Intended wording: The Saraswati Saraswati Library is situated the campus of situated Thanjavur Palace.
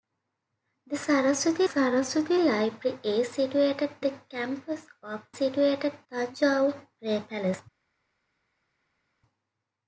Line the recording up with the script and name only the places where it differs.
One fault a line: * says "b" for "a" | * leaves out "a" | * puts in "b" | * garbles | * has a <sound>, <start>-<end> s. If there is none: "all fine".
all fine